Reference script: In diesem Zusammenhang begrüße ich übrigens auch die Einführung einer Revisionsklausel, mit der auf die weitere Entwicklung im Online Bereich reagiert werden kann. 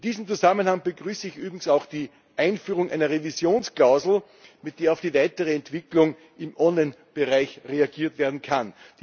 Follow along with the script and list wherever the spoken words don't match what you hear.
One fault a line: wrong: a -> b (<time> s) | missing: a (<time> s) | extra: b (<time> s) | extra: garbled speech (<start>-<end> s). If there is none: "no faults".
no faults